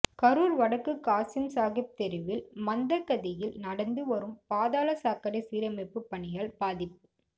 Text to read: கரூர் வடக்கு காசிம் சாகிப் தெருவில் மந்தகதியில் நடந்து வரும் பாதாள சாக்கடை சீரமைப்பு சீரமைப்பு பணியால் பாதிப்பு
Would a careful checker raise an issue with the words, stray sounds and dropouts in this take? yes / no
yes